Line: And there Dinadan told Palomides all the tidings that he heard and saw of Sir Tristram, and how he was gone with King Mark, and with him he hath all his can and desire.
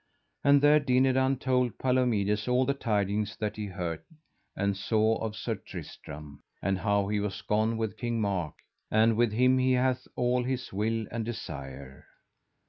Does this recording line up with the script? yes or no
no